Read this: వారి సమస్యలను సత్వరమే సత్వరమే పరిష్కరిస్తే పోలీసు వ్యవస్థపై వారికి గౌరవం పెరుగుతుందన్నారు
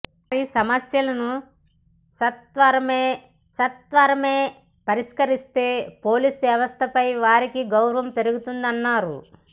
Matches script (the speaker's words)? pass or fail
pass